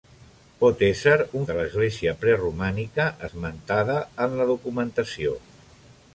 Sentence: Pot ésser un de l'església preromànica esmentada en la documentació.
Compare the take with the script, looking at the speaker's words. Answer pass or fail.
pass